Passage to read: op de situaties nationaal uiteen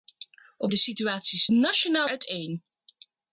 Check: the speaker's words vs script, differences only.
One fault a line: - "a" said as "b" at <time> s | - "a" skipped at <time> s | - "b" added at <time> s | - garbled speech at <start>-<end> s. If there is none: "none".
none